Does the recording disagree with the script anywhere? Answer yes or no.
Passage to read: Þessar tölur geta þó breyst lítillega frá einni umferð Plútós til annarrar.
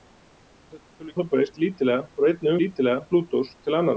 yes